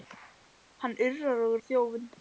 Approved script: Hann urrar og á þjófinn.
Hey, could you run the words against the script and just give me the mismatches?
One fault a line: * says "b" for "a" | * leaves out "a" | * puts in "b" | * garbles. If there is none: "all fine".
all fine